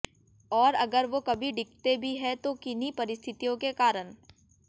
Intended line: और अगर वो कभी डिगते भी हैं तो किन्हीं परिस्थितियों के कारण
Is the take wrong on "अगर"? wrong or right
right